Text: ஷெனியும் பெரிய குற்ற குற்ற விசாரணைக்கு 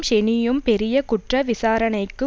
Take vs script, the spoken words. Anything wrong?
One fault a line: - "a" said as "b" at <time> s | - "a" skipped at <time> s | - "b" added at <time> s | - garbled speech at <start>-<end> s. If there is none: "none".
- "குற்ற" skipped at 1.4 s